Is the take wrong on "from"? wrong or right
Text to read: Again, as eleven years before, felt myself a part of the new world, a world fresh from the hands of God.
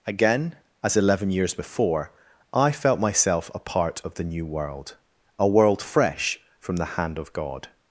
right